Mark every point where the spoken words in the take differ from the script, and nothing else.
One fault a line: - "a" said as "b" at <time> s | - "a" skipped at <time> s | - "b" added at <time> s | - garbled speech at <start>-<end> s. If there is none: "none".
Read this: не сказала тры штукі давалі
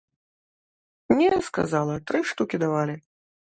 none